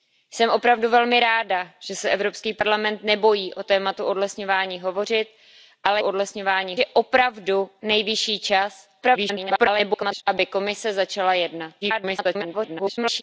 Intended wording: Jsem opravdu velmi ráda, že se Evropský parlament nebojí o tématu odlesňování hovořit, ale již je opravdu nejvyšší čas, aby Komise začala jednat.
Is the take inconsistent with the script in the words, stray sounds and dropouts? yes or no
yes